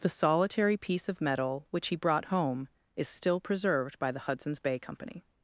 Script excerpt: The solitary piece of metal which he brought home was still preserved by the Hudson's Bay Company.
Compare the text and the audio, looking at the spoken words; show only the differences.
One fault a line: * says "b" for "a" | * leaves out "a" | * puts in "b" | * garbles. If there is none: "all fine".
* says "is" for "was"